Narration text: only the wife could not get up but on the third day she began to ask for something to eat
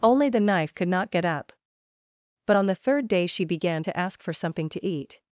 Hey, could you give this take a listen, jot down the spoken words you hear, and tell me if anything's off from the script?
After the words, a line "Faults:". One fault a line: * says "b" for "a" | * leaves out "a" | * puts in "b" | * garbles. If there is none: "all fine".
only the knife could not get up but on the third day she began to ask for something to eat
Faults:
* says "knife" for "wife"